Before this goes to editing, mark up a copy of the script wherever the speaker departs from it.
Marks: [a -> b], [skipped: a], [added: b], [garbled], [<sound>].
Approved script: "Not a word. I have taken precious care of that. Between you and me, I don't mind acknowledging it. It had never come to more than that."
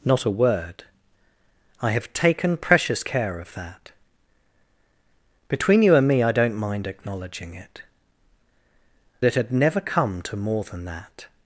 "Not a word. I have taken precious care of that. Between you and me, I don't mind acknowledging it. It had never come to more than that."